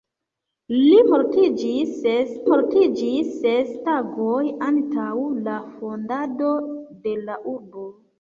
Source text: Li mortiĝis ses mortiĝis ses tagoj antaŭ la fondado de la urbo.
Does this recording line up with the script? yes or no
yes